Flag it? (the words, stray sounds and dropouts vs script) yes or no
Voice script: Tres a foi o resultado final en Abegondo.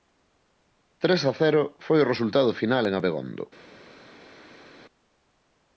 yes